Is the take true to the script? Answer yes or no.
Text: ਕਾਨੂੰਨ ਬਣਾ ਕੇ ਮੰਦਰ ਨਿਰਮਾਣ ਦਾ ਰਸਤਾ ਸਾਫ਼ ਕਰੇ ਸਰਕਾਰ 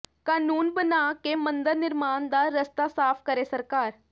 yes